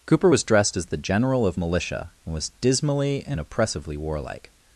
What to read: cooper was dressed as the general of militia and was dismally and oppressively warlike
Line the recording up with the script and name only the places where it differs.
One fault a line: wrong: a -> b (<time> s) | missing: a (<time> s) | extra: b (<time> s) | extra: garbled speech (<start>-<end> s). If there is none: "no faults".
no faults